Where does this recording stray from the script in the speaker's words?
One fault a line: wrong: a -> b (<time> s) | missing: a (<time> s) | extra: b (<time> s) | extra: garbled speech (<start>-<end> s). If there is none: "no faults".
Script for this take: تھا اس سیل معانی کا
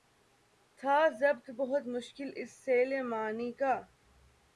extra: ضبط بہت مشکل (1.2 s)